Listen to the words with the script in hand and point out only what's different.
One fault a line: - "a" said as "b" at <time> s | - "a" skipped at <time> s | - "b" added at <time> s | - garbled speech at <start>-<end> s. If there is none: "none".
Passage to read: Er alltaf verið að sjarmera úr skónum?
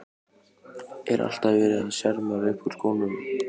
- "upp" added at 2.5 s